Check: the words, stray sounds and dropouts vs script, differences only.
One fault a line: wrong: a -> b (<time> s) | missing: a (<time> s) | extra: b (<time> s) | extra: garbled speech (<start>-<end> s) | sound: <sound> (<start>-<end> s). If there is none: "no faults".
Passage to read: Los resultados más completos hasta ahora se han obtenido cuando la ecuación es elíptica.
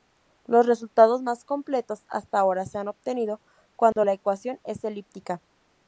sound: dropout (3.9-4.0 s)